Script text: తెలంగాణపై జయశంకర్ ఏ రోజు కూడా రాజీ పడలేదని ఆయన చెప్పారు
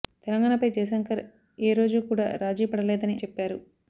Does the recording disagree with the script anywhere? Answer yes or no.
yes